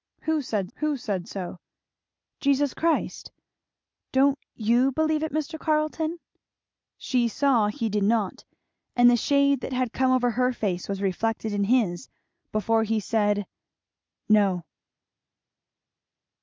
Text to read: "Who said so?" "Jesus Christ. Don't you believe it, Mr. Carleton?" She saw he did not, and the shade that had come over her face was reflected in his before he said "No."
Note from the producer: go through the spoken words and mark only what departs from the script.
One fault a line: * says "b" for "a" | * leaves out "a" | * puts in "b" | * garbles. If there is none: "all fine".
* puts in "who said"